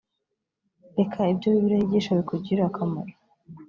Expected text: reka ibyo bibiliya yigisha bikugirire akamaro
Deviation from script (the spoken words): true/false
false